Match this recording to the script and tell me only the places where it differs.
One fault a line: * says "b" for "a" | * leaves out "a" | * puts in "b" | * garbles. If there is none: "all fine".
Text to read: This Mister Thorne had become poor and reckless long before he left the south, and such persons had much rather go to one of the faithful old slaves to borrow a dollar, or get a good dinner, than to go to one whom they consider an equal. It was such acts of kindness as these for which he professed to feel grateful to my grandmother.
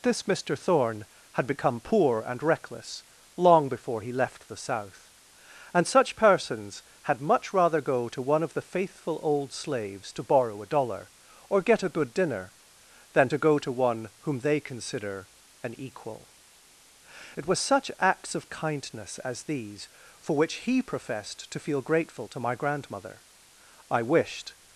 * puts in "I wished"